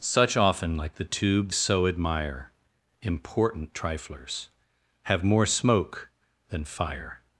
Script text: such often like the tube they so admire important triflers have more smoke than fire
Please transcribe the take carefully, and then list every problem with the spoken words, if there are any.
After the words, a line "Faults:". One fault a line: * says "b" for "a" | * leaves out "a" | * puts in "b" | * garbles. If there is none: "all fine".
such often like the tube so admire important triflers have more smoke than fire
Faults:
* leaves out "they"